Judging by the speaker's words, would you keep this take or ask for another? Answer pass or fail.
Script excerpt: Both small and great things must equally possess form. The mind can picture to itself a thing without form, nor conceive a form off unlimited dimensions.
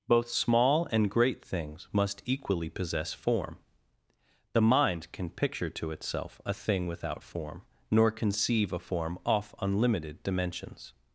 pass